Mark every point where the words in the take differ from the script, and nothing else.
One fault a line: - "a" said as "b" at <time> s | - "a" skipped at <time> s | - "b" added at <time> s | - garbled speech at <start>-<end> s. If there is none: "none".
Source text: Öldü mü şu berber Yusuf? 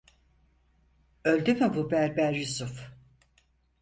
- "şu" said as "bu" at 1.8 s